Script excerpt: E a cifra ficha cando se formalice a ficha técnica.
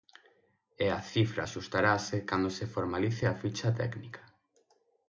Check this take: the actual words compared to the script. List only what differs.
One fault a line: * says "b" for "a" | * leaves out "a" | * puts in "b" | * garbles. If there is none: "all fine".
* says "axustarase" for "ficha"